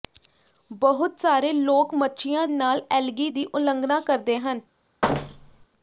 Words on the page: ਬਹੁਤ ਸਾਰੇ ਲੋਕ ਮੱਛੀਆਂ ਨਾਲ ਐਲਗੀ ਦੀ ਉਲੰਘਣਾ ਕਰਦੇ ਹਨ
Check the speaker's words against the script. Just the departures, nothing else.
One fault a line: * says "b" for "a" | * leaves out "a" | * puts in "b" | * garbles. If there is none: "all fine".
all fine